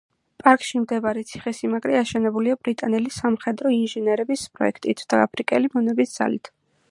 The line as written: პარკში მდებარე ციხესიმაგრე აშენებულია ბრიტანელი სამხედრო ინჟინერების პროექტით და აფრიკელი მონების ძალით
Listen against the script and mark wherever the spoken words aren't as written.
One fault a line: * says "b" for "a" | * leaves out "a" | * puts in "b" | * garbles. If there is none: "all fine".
all fine